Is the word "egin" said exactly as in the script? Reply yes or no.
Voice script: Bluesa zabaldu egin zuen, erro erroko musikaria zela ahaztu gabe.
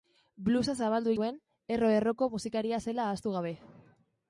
no